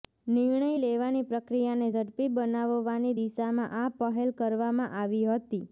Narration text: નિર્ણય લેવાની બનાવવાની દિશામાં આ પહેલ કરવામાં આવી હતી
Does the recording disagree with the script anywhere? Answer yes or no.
yes